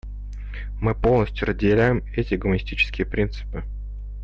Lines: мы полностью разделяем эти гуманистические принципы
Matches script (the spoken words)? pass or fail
pass